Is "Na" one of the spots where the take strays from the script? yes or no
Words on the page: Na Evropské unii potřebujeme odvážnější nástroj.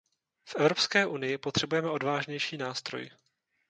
yes